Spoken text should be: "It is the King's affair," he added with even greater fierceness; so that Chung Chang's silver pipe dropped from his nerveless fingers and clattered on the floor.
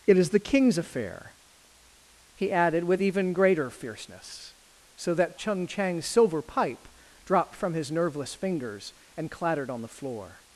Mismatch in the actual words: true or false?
false